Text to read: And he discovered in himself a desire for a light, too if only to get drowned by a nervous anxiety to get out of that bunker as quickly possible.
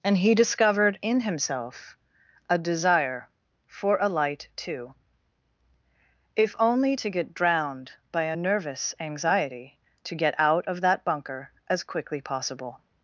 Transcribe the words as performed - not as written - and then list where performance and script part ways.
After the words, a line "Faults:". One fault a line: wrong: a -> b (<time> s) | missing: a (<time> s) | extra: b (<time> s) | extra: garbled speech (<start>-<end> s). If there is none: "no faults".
And he discovered in himself a desire for a light, too if only to get drowned by a nervous anxiety to get out of that bunker as quickly possible.
Faults:
no faults